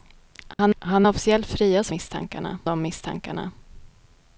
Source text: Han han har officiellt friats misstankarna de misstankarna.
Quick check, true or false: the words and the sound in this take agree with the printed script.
false